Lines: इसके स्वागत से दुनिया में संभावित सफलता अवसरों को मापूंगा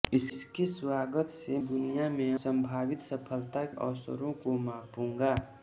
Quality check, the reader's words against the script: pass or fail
pass